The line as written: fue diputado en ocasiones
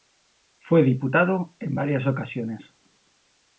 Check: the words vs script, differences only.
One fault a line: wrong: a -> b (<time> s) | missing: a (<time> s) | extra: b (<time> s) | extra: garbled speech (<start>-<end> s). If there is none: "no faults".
extra: varias (1.7 s)